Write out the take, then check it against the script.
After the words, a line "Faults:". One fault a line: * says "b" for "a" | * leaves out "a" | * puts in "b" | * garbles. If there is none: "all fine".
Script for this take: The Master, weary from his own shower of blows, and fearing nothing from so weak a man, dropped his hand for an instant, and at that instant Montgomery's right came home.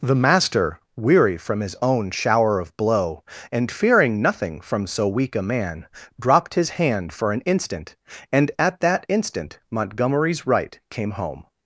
The Master, weary from his own shower of blow, and fearing nothing from so weak a man, dropped his hand for an instant, and at that instant Montgomery's right came home.
Faults:
* says "blow" for "blows"